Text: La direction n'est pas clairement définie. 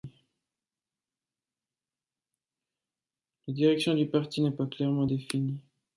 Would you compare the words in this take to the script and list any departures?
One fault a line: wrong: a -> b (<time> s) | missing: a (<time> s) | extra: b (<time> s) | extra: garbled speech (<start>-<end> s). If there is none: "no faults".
extra: du parti (3.9 s)